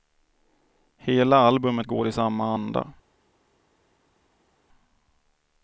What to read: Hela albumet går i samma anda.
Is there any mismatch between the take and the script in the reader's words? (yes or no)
no